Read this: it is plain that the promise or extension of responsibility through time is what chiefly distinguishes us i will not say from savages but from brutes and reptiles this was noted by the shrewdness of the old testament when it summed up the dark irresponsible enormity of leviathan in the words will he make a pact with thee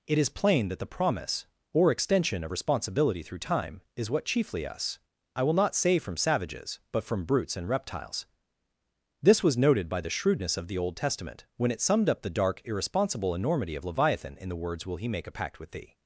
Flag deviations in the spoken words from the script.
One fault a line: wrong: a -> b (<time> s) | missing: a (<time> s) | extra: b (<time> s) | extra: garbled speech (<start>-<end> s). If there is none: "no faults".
missing: distinguishes (4.6 s)